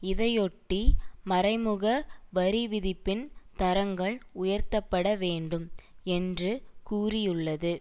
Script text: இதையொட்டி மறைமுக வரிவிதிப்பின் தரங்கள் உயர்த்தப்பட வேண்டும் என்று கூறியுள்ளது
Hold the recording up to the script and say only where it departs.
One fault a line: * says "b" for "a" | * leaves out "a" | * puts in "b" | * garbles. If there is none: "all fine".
all fine